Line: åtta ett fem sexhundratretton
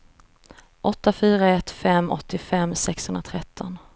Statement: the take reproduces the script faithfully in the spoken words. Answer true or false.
false